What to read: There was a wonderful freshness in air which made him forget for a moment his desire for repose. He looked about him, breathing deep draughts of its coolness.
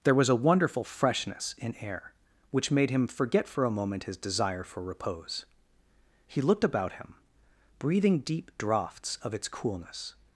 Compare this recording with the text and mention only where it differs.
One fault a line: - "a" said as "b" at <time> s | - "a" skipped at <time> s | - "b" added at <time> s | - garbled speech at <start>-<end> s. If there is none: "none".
none